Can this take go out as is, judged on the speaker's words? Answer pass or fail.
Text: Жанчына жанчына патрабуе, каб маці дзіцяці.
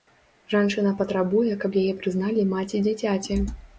fail